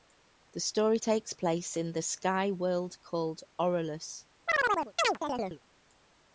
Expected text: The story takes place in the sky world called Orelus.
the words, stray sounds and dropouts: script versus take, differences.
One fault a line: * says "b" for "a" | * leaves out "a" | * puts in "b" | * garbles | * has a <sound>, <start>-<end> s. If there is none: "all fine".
* has a chirp, 4.5-5.6 s